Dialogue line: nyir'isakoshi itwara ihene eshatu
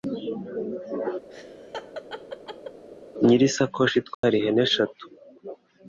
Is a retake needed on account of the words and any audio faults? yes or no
yes